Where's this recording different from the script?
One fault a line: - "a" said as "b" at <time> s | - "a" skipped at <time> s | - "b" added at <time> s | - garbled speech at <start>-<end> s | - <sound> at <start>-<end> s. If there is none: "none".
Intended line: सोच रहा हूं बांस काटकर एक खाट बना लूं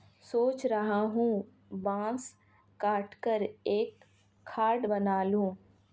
none